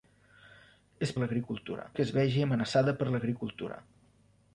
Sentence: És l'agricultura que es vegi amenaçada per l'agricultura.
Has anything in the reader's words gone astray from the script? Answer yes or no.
no